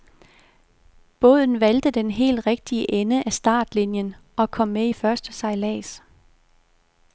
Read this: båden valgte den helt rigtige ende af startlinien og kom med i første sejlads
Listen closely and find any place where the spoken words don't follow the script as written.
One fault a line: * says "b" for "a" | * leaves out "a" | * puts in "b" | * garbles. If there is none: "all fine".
all fine